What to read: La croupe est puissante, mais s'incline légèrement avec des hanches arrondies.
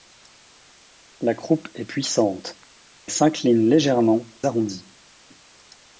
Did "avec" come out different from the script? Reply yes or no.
yes